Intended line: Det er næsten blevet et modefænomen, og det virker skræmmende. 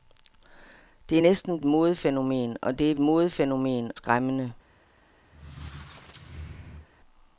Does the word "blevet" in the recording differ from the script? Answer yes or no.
yes